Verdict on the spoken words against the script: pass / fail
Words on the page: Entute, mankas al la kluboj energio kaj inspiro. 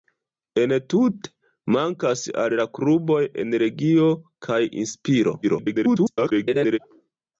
fail